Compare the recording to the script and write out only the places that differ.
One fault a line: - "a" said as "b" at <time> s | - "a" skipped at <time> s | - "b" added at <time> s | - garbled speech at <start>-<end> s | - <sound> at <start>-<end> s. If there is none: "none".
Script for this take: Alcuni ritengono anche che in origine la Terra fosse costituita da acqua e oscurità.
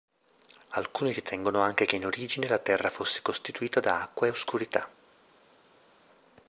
none